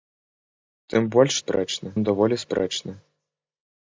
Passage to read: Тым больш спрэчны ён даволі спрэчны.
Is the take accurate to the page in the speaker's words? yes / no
yes